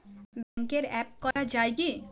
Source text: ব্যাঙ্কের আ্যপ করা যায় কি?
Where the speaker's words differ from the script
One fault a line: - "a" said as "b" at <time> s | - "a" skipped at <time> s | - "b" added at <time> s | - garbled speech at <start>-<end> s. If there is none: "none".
none